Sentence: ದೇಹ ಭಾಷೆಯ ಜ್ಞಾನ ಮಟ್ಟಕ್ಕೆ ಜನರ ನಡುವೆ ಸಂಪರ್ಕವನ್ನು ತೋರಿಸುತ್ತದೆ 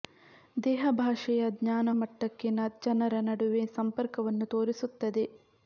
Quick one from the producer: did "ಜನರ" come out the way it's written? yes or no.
yes